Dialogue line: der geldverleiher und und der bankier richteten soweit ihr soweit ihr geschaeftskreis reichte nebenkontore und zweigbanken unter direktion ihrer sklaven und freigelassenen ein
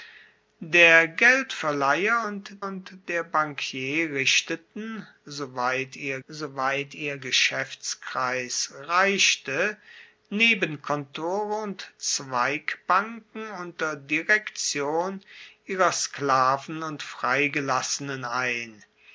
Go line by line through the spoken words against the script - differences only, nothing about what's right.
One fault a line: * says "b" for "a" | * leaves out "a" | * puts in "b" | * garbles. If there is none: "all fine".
all fine